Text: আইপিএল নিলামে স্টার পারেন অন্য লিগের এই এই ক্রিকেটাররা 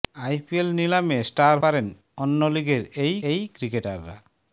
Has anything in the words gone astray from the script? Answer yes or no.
no